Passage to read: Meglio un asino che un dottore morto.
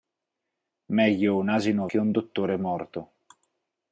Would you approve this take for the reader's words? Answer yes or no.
yes